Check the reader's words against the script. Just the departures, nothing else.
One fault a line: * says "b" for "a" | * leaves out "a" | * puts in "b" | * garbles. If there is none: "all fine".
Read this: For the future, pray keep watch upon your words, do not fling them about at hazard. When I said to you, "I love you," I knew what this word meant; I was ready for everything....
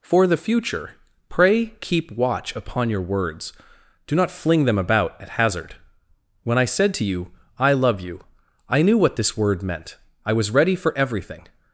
all fine